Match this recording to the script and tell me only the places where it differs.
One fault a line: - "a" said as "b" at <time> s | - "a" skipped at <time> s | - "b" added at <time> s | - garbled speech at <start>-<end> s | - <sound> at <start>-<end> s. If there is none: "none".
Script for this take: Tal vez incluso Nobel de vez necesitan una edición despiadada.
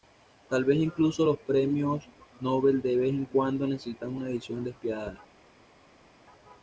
- "los premios" added at 1.2 s
- "en cuando" added at 3.1 s